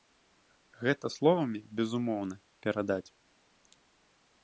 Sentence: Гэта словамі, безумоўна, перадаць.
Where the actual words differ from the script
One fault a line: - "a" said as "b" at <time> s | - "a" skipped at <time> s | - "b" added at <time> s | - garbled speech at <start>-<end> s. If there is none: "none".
none